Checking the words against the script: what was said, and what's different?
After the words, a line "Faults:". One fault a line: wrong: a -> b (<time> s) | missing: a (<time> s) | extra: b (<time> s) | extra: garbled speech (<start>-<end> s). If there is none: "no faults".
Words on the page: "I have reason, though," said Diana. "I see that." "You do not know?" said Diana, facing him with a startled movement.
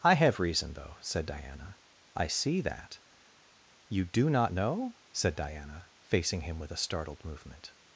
"I have reason, though," said Diana. "I see that." "You do not know?" said Diana, facing him with a startled movement.
Faults:
no faults